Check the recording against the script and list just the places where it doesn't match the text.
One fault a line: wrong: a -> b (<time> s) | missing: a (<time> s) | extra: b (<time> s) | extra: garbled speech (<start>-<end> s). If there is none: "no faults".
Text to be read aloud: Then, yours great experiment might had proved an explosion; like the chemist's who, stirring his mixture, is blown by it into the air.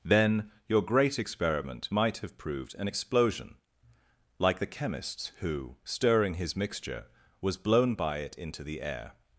wrong: yours -> your (0.7 s)
wrong: had -> have (2.2 s)
wrong: is -> was (7.4 s)